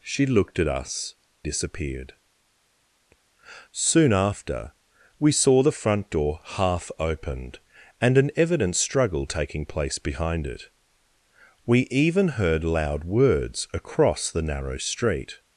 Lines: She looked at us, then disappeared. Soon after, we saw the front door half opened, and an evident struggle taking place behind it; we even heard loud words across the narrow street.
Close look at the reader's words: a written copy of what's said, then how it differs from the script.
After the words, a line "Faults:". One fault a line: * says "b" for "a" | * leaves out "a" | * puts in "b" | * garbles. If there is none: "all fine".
She looked at us, disappeared. Soon after, we saw the front door half opened, and an evident struggle taking place behind it; we even heard loud words across the narrow street.
Faults:
* leaves out "then"